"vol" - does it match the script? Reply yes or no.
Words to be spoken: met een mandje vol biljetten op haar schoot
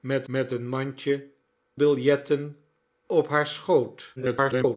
no